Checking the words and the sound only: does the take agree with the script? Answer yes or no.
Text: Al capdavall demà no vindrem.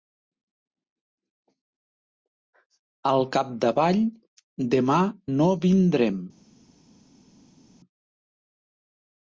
yes